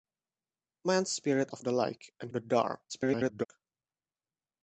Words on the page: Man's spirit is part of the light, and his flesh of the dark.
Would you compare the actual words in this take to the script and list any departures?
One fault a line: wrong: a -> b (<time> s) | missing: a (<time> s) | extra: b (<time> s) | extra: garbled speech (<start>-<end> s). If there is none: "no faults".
missing: is part (1.5 s)
missing: his flesh of (2.3 s)
extra: garbled speech (2.9-3.5 s)